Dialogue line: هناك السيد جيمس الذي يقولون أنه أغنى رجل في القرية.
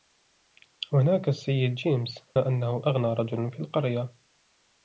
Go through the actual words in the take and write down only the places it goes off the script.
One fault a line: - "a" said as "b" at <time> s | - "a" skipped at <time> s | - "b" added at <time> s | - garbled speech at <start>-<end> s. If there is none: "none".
- "الذي يقولون" skipped at 2.2 s